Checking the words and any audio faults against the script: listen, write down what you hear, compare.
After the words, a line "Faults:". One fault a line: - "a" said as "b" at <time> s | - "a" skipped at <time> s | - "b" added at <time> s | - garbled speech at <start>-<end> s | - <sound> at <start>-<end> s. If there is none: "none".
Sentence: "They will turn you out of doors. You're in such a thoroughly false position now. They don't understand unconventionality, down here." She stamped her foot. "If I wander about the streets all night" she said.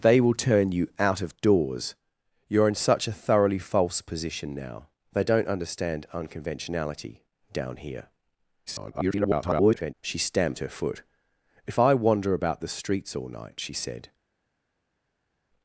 "They will turn you out of doors. You're in such a thoroughly false position now. They don't understand unconventionality, down here." [garbled] She stamped her foot. "If I wander about the streets all night" she said.
Faults:
- garbled speech at 8.7-9.9 s